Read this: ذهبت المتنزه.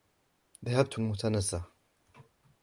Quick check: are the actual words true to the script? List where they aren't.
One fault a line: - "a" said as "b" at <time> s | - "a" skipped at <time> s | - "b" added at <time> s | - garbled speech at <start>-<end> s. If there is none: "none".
none